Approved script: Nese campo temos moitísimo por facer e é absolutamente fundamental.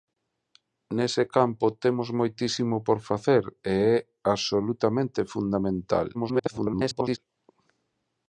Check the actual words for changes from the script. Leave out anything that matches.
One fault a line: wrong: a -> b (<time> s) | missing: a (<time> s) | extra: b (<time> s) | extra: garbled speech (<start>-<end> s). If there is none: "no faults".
extra: garbled speech (6.1-7.2 s)